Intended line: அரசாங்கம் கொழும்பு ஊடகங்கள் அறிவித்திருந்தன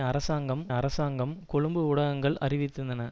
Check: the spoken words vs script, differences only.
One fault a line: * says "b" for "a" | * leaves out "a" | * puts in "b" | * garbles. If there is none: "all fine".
* puts in "அரசாங்கம்"